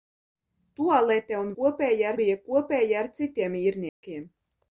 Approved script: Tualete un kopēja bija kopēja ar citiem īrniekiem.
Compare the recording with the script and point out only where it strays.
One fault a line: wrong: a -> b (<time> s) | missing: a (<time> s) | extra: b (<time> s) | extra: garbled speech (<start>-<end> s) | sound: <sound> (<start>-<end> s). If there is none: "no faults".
sound: dropout (3.9-4.0 s)